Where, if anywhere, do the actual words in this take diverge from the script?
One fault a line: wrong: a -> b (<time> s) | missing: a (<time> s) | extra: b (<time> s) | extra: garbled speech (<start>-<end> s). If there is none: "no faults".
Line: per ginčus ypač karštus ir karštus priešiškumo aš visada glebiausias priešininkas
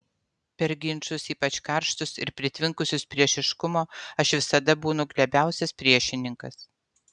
wrong: karštus -> pritvinkusius (2.4 s)
extra: būnu (4.9 s)